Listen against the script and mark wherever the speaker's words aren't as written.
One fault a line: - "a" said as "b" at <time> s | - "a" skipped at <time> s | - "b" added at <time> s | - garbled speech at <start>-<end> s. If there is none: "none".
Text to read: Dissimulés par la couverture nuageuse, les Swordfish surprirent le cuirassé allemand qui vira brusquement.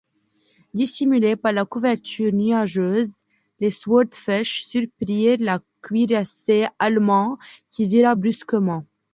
none